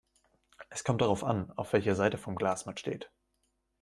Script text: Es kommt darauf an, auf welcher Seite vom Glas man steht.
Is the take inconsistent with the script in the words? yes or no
no